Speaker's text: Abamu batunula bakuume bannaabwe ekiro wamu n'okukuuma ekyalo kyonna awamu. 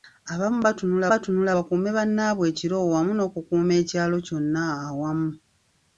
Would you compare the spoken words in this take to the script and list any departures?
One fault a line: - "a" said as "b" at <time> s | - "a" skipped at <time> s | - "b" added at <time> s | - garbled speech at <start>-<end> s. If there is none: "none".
- "batunula" added at 1.1 s